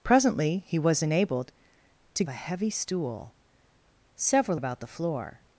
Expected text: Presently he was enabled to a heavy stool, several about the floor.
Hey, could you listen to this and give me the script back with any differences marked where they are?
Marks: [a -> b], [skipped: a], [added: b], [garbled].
Presently he was enabled to a heavy stool, several about the floor.